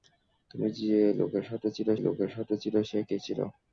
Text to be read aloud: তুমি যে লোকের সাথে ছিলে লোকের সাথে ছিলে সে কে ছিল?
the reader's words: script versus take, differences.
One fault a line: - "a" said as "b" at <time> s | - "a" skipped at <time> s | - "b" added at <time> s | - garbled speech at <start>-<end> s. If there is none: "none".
none